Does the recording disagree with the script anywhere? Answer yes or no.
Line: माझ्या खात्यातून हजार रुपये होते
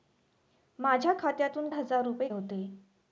no